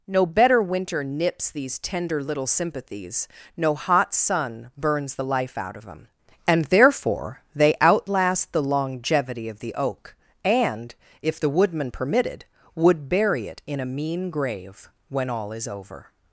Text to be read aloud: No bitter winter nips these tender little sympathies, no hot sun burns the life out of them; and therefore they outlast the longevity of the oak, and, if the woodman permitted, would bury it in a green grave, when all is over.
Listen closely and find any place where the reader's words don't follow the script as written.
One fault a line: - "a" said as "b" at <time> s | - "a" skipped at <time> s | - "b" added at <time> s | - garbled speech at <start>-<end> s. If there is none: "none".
- "bitter" said as "better" at 0.2 s
- "green" said as "mean" at 13.8 s